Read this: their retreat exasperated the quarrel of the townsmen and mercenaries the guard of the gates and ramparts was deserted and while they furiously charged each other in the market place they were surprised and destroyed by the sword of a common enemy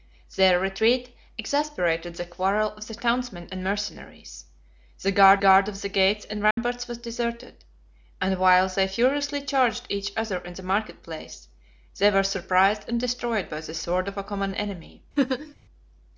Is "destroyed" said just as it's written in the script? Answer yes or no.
yes